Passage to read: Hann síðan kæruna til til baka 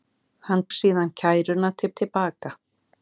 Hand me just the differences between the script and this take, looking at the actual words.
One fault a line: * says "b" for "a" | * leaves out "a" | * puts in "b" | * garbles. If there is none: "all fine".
all fine